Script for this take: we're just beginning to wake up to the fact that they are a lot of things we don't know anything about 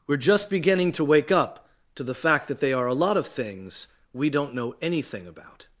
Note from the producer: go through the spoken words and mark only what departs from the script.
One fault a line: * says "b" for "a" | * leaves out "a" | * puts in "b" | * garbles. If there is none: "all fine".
all fine